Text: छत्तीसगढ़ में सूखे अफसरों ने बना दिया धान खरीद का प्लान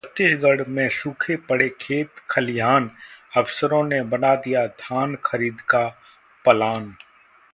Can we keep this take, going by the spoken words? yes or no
no